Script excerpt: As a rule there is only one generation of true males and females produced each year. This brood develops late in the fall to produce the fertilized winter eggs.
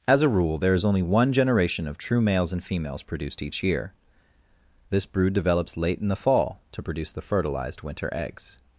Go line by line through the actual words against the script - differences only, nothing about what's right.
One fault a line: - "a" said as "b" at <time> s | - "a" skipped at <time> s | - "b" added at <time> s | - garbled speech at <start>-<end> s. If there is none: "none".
none